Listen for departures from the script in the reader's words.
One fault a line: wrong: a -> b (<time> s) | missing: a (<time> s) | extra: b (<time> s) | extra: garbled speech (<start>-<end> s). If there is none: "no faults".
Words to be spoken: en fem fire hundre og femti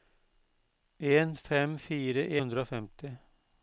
no faults